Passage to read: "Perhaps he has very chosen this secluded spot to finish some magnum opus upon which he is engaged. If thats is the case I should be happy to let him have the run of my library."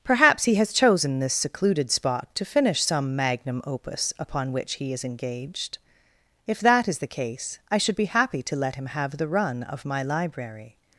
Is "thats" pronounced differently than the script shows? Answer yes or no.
yes